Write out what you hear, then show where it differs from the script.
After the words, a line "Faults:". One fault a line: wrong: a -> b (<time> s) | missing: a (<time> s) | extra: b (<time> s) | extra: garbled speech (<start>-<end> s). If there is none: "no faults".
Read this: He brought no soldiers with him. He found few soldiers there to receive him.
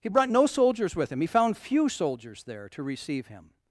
He brought no soldiers with him. He found few soldiers there to receive him.
Faults:
no faults